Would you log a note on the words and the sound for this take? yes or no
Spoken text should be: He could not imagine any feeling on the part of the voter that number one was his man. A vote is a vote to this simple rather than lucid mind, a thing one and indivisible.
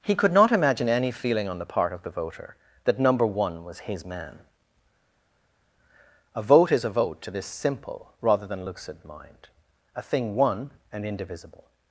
no